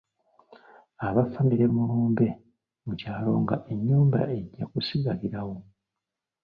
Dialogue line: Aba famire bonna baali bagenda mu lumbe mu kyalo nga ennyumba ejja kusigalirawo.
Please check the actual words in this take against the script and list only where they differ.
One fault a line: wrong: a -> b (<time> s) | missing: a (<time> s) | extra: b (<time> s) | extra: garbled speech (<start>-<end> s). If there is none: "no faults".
missing: bonna baali bagenda (1.6 s)